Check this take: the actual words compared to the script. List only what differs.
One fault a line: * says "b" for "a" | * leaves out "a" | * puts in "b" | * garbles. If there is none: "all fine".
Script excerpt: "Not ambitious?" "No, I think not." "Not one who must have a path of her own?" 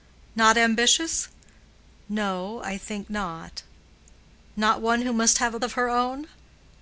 * leaves out "path"